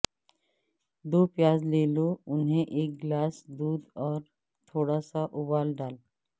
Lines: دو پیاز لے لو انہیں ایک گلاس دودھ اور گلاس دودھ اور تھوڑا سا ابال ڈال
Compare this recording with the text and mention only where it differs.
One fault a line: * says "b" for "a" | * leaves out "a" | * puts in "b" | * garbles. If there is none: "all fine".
* leaves out "گلاس دودھ اور"